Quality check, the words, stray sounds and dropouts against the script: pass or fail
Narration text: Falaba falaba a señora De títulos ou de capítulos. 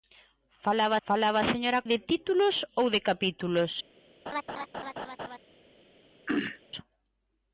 fail